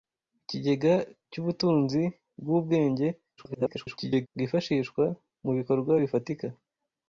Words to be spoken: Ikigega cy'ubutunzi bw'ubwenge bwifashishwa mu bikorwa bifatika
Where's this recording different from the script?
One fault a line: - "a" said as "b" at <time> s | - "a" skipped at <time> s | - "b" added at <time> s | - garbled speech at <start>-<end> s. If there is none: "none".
- garbled speech at 3.4-4.3 s